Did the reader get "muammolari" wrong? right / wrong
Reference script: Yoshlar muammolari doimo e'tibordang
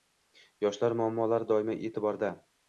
right